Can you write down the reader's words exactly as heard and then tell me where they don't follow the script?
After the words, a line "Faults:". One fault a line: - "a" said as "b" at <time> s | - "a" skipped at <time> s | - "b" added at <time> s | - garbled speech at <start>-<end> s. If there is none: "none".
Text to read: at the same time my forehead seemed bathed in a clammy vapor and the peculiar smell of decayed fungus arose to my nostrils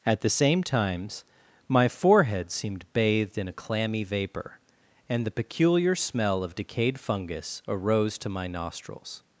at the same times my forehead seemed bathed in a clammy vapor and the peculiar smell of decayed fungus arose to my nostrils
Faults:
- "time" said as "times" at 0.6 s